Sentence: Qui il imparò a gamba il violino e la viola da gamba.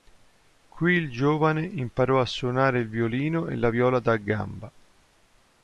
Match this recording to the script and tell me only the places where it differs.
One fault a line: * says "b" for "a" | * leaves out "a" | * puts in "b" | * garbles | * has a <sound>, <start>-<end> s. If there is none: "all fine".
* puts in "giovane"
* says "suonare" for "gamba"